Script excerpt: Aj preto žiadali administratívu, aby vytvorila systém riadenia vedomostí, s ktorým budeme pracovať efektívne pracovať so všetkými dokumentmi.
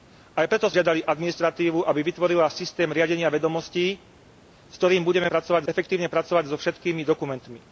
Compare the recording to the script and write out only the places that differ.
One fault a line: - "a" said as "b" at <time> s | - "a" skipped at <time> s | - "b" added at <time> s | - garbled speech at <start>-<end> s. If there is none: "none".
none